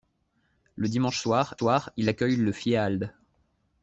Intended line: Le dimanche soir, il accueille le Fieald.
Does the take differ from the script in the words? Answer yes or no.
yes